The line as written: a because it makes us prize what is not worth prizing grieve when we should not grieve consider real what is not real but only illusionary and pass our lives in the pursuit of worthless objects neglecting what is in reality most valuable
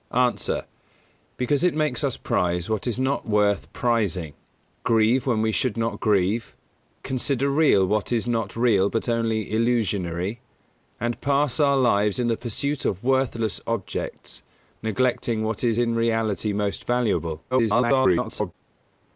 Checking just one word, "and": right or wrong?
right